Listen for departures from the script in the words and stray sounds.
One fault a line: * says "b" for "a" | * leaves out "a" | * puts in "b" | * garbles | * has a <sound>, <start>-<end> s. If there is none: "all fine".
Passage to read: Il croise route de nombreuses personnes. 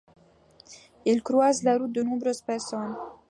* puts in "la"